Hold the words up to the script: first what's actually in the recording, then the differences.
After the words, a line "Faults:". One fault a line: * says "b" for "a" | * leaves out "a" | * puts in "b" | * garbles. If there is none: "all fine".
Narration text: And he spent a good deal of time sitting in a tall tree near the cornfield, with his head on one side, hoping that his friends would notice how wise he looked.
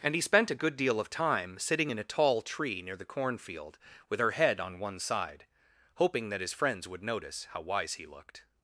And he spent a good deal of time sitting in a tall tree near the cornfield, with her head on one side, hoping that his friends would notice how wise he looked.
Faults:
* says "her" for "his"